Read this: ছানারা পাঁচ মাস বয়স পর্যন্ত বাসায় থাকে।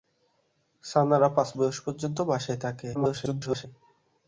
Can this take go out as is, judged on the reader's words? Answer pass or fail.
fail